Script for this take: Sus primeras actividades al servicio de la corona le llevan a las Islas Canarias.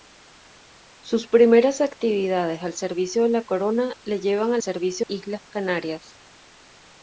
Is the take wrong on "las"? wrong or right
wrong